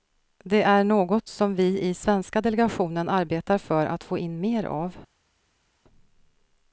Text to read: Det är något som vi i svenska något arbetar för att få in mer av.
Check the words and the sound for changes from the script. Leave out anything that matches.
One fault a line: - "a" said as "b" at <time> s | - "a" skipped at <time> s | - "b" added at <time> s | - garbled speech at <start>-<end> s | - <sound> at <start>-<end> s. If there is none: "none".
- "något" said as "delegationen" at 2.4 s